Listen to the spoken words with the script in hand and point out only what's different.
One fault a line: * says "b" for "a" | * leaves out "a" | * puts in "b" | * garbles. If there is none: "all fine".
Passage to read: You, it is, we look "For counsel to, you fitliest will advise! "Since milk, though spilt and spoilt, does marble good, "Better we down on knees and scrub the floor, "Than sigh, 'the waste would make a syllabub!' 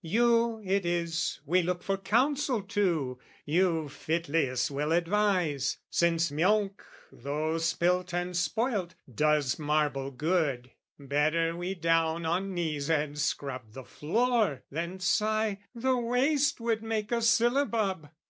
all fine